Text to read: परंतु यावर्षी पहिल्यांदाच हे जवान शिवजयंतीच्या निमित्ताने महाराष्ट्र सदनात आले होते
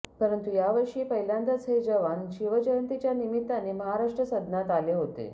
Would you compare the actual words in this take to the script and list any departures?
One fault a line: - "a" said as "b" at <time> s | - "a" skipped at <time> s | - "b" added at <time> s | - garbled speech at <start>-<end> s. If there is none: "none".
none